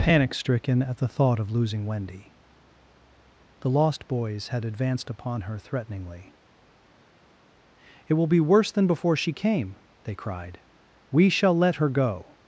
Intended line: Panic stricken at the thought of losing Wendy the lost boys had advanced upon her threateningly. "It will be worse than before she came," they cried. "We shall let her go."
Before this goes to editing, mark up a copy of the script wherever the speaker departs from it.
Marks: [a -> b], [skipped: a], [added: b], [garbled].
Panic stricken at the thought of losing Wendy the lost boys had advanced upon her threateningly. "It will be worse than before she came," they cried. "We shall let her go."